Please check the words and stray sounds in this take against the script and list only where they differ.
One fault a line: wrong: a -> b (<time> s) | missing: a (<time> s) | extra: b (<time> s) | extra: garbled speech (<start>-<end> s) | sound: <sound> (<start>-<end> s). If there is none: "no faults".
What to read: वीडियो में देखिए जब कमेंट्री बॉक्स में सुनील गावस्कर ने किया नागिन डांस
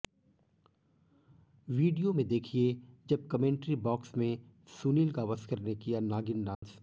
sound: dropout (6.5-6.6 s)